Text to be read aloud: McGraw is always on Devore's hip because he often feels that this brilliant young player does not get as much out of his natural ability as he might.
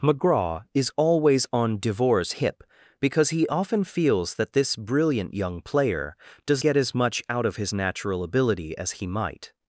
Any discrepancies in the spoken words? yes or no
yes